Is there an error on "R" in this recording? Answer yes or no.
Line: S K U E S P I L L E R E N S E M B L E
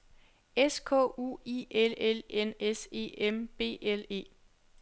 yes